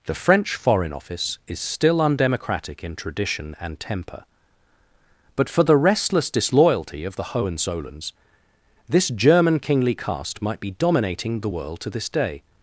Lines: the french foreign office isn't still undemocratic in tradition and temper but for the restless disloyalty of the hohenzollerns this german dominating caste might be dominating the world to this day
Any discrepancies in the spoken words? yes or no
yes